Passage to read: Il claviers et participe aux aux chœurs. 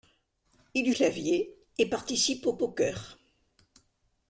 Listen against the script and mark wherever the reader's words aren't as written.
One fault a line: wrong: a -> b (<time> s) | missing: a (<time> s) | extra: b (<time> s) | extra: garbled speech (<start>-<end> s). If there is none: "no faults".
no faults